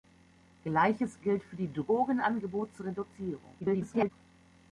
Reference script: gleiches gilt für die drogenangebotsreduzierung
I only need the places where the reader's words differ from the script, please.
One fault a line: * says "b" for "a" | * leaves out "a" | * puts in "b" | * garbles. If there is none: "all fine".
* garbles